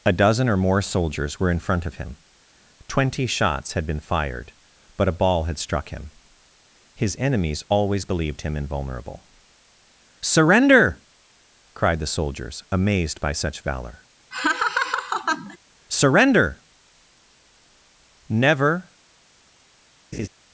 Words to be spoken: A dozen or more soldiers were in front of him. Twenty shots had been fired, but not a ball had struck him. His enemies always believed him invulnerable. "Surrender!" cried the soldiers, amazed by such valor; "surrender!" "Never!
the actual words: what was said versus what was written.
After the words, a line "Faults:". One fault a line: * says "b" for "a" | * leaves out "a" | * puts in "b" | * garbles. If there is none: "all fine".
A dozen or more soldiers were in front of him. Twenty shots had been fired, but a ball had struck him. His enemies always believed him invulnerable. "Surrender!" cried the soldiers, amazed by such valor; "surrender!" "Never!
Faults:
* leaves out "not"